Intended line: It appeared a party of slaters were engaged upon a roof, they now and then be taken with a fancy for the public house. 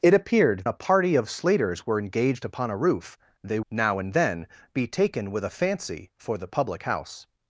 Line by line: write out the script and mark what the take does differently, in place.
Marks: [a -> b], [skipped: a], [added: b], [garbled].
It appeared a party of slaters were engaged upon a roof, they now and then be taken with a fancy for the public house.